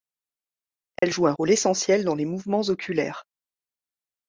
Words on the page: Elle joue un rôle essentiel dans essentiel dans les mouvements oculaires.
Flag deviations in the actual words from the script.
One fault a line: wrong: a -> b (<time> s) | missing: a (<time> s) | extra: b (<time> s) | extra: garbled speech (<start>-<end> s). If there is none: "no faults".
missing: essentiel dans (2.1 s)